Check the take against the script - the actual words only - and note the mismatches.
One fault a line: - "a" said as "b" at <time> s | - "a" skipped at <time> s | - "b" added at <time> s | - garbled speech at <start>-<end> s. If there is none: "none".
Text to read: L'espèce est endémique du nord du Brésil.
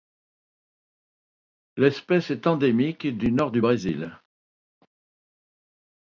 none